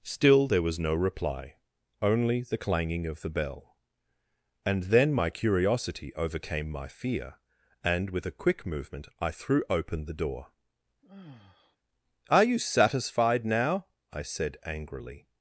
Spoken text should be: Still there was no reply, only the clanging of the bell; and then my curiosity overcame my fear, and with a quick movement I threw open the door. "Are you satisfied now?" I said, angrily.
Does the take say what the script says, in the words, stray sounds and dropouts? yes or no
no